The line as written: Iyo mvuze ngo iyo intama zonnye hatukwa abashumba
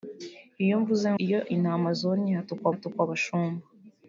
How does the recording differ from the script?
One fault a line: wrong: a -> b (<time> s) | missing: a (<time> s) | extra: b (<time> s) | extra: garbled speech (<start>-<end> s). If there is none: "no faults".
missing: ngo (1.1 s)
extra: hatukwa (2.7 s)